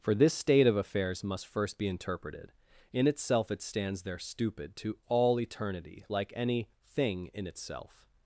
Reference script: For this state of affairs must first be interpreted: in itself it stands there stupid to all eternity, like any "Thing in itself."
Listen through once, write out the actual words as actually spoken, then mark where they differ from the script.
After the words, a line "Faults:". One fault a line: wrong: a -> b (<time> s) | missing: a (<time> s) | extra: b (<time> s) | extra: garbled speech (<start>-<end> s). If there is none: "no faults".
For this state of affairs must first be interpreted: in itself it stands there stupid to all eternity, like any "Thing in itself."
Faults:
no faults